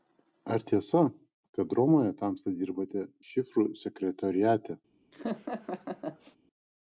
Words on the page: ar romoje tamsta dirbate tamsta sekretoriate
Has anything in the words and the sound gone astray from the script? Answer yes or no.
yes